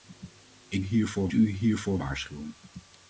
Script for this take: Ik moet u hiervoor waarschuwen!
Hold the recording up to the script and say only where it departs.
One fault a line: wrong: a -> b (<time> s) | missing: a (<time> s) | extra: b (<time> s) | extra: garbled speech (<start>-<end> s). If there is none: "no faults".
wrong: moet -> hiervoor (0.8 s)